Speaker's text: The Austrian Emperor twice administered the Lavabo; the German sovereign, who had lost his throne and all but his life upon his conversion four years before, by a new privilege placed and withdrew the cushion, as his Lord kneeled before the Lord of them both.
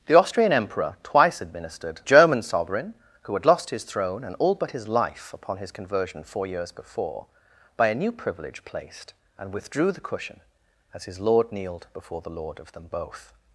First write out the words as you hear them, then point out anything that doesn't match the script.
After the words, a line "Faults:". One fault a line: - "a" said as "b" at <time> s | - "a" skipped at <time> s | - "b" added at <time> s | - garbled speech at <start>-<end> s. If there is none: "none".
The Austrian Emperor twice administered German sovereign, who had lost his throne and all but his life upon his conversion four years before, by a new privilege placed and withdrew the cushion, as his Lord kneeled before the Lord of them both.
Faults:
- "the Lavabo the" skipped at 2.0 s